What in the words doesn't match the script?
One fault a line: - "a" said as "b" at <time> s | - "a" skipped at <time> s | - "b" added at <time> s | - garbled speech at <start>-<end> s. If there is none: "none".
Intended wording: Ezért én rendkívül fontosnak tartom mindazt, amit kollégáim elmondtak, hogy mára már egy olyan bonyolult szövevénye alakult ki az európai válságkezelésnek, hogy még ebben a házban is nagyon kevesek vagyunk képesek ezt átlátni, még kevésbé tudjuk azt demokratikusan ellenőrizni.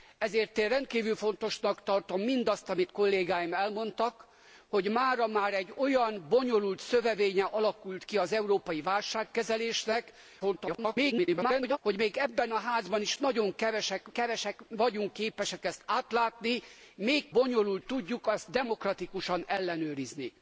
- garbled speech at 10.4-11.8 s
- "kevesek" added at 14.1 s
- "kevésbé" said as "bonyolult" at 17.3 s